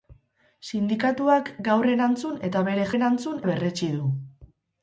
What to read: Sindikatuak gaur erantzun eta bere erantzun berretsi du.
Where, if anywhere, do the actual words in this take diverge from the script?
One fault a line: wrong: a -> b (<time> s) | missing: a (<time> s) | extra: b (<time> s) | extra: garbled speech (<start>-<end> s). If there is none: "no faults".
no faults